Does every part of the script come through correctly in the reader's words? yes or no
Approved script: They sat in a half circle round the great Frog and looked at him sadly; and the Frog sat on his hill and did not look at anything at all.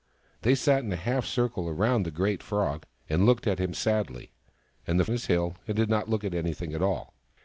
no